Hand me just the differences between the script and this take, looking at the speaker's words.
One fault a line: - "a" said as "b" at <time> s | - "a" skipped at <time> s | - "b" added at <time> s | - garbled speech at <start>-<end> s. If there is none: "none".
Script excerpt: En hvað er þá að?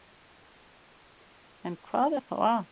none